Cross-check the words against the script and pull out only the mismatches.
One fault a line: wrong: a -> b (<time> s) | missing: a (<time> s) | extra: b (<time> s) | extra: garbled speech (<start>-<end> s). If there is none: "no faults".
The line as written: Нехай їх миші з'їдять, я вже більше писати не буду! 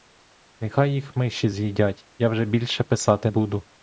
missing: не (3.3 s)